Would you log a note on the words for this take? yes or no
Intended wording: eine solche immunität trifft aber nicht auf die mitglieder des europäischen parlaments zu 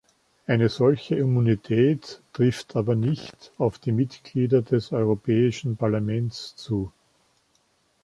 no